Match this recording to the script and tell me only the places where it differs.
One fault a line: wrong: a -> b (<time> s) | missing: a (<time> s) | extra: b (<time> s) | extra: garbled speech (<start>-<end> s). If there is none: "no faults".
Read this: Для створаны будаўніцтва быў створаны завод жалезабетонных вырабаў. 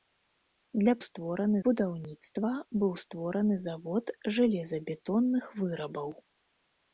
no faults